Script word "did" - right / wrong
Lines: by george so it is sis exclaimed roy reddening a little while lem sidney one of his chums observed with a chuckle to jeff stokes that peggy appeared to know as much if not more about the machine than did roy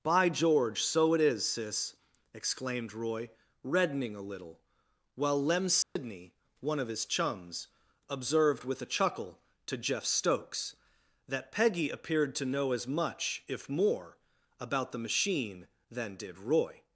right